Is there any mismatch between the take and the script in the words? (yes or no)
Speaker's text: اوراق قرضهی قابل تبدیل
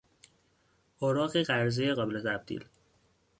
no